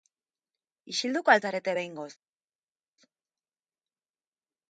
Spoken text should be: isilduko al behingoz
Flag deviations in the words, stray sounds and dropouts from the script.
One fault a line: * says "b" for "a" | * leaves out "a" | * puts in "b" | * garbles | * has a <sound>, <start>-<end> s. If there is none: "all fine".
* puts in "zarete"